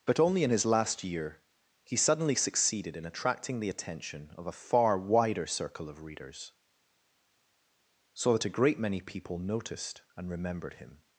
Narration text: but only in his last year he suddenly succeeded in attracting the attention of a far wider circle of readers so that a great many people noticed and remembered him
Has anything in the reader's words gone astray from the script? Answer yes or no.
no